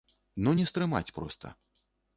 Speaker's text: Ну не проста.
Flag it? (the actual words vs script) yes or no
yes